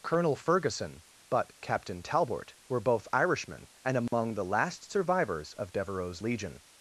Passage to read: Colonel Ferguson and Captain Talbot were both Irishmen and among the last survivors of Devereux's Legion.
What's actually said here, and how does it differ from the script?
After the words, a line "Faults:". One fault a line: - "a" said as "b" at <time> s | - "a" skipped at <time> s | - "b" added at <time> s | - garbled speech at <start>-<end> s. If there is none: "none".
Colonel Ferguson but Captain Talbot were both Irishmen and among the last survivors of Devereux's Legion.
Faults:
- "and" said as "but" at 1.3 s